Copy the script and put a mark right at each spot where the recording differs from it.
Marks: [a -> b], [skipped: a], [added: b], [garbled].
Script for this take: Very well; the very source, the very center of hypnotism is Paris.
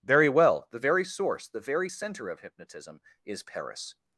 Very well; the very source, the very center of hypnotism is Paris.